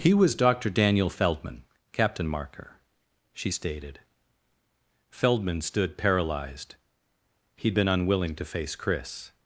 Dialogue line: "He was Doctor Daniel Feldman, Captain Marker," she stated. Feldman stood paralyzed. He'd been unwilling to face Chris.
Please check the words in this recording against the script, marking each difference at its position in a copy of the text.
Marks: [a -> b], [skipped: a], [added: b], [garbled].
"He was Doctor Daniel Feldman, Captain Marker," she stated. Feldman stood paralyzed. He'd been unwilling to face Chris.